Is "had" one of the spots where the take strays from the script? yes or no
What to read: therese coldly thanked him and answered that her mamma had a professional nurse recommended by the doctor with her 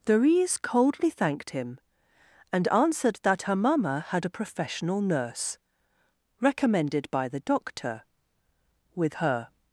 no